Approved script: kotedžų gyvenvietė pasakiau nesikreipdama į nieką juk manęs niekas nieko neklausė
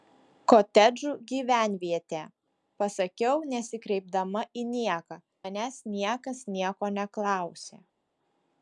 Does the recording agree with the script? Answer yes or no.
no